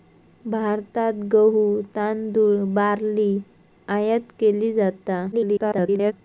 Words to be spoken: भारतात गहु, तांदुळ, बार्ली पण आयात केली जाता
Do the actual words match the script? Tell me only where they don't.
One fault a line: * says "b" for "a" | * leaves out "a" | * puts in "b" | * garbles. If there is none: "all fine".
* leaves out "पण"
* garbles